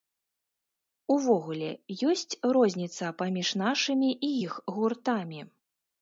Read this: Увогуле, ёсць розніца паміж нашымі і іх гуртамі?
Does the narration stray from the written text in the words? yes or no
no